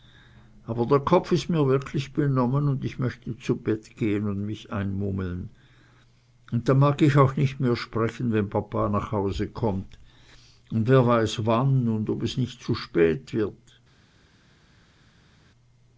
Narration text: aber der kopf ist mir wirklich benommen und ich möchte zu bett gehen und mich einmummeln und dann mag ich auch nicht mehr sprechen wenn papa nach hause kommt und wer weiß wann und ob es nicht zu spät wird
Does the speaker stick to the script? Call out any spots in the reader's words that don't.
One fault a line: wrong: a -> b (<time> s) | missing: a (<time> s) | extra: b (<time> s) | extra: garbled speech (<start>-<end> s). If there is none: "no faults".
no faults